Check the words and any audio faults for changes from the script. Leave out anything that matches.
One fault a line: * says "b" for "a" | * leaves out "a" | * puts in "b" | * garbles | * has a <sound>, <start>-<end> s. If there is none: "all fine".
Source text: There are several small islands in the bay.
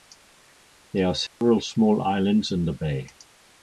* has a dropout, 1.3-1.4 s